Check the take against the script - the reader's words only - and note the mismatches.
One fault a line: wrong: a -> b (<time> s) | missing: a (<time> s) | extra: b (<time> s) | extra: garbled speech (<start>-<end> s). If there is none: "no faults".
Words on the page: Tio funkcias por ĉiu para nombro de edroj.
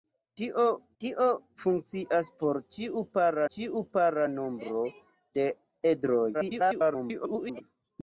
extra: tio (1.0 s)
extra: ĉiu para (3.5 s)
extra: garbled speech (6.3-7.6 s)